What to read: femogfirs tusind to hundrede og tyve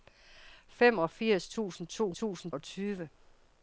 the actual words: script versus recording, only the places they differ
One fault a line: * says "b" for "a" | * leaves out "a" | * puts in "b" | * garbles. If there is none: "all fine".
* says "tusind" for "hundrede"